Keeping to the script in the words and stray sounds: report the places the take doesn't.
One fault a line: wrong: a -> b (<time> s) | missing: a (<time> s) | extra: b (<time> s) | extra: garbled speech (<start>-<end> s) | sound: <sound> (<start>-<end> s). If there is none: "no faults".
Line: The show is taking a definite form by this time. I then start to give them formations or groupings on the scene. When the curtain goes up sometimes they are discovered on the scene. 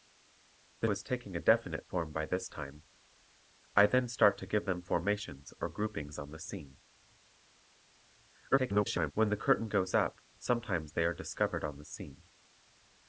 missing: show (0.9 s)
extra: garbled speech (8.5-9.1 s)